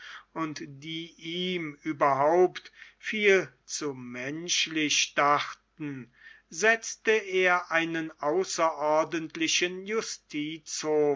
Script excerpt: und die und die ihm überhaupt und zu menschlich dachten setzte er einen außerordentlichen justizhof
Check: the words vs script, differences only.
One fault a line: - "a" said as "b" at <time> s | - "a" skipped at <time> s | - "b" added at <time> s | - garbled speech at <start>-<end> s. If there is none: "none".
- "und die" skipped at 1.1 s
- "und" said as "viel" at 3.0 s